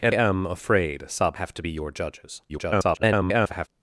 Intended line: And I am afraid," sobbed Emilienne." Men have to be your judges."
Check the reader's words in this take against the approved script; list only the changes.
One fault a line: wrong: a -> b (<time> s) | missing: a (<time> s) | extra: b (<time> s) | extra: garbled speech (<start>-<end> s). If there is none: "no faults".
missing: I (0.1 s)
missing: Emilienne Men (1.4 s)
extra: garbled speech (2.5-3.7 s)